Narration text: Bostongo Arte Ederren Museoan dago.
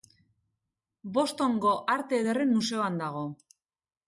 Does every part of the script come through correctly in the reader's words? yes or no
yes